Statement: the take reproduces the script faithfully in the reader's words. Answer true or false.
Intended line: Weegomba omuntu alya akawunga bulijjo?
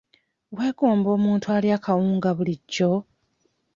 true